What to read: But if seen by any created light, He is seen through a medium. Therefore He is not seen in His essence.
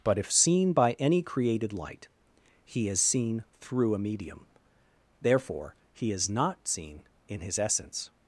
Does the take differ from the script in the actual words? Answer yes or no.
no